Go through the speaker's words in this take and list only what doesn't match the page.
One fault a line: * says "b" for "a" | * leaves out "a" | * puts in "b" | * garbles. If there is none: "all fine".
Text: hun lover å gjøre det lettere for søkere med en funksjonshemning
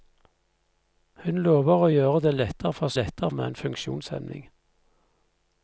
* says "lettere" for "søkere"